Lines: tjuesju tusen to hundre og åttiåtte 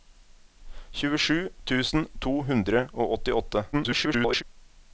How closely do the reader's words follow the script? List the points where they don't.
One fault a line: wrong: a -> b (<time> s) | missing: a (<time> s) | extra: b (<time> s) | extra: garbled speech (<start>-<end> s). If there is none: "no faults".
extra: garbled speech (3.7-4.4 s)